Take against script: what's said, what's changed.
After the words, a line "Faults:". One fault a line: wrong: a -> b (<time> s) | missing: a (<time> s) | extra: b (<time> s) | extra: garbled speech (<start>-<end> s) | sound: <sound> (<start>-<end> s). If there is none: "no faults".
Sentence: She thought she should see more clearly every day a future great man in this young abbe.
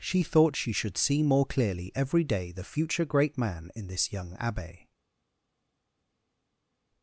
She thought she should see more clearly every day the future great man in this young abbe.
Faults:
wrong: a -> the (2.5 s)